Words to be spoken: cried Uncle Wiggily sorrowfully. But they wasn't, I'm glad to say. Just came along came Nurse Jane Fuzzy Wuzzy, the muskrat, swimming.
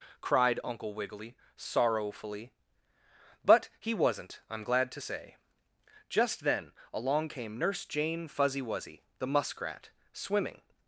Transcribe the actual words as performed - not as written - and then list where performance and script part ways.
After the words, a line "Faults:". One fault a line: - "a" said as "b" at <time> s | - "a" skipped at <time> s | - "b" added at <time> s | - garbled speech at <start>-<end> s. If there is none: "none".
cried Uncle Wiggily sorrowfully. But he wasn't, I'm glad to say. Just then along came Nurse Jane Fuzzy Wuzzy, the muskrat, swimming.
Faults:
- "they" said as "he" at 3.8 s
- "came" said as "then" at 6.4 s